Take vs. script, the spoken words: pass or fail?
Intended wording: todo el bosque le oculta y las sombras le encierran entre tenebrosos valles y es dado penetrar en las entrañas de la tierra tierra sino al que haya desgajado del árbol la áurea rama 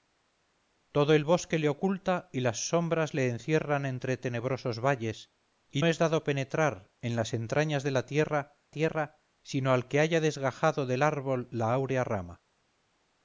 pass